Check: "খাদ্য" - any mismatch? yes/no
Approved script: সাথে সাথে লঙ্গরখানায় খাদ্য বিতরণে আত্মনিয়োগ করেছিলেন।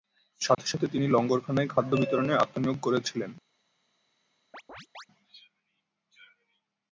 no